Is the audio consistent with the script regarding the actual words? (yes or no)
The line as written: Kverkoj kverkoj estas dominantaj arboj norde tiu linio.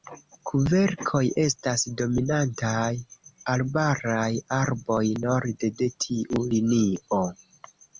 no